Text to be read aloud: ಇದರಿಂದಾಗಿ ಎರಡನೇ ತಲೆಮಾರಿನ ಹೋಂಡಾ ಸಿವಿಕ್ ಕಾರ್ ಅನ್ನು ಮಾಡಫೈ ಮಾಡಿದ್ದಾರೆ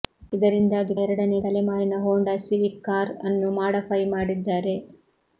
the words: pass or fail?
pass